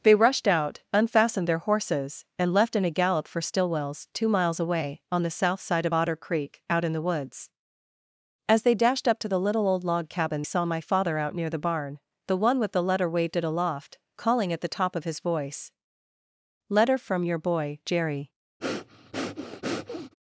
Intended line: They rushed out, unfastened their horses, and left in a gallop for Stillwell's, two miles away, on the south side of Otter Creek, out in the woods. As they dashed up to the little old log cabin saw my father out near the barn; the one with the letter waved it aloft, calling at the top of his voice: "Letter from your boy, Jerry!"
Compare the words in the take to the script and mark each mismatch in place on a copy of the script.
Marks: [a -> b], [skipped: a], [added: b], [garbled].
They rushed out, unfastened their horses, and left in a gallop for Stillwell's, two miles away, on the south side of Otter Creek, out in the woods. As they dashed up to the little old log cabin saw my father out near the barn; the one with the letter waved it aloft, calling at the top of his voice: "Letter from your boy, Jerry!"